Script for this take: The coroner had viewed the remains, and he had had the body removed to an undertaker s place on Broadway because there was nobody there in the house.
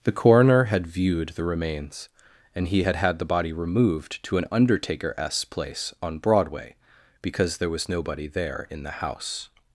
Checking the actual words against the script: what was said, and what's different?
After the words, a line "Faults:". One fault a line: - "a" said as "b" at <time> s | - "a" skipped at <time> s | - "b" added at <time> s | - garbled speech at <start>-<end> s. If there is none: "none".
The coroner had viewed the remains, and he had had the body removed to an undertaker s place on Broadway because there was nobody there in the house.
Faults:
none